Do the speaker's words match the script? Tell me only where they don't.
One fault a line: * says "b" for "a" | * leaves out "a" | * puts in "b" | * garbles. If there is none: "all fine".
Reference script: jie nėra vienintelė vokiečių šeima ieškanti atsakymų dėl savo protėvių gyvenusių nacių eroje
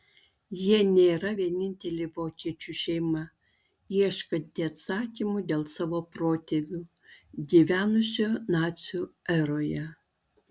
all fine